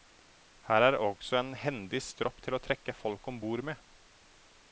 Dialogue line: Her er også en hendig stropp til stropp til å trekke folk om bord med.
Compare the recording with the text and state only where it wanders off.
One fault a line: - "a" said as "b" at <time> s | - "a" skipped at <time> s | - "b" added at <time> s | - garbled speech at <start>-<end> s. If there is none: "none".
- "stropp til" skipped at 2.6 s